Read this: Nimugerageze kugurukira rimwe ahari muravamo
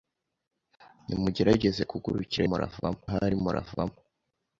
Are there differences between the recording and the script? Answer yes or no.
yes